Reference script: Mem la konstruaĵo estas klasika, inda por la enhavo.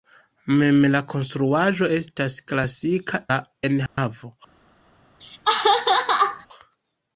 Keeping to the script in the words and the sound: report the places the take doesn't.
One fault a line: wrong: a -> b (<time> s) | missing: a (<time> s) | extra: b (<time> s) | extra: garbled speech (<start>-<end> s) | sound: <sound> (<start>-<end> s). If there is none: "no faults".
missing: inda por (3.2 s)
sound: dropout (3.9-4.0 s)
sound: laugh (5.2-6.5 s)